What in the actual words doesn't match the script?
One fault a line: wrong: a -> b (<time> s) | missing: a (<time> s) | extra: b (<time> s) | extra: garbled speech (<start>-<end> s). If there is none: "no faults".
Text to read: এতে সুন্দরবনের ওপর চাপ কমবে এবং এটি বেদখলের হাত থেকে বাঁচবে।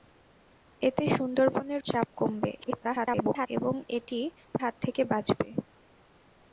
missing: ওপর (1.8 s)
extra: garbled speech (2.6-3.5 s)
missing: বেদখলের (4.2 s)